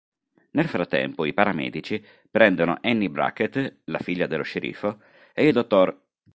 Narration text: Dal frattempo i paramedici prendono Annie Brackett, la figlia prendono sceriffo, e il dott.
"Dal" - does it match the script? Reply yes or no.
no